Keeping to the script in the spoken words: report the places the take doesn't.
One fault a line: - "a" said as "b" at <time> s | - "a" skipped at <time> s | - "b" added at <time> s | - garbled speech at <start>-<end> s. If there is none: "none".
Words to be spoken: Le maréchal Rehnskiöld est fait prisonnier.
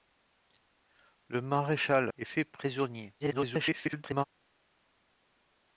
- "Rehnskiöld" skipped at 2.1 s
- garbled speech at 3.2-4.2 s